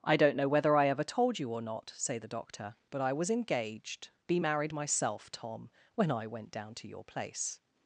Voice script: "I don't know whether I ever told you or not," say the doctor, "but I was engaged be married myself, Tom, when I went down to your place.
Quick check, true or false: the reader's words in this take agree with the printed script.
true